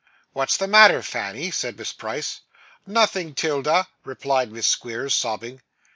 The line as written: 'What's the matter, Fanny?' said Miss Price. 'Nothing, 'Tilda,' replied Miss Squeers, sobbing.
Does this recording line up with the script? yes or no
yes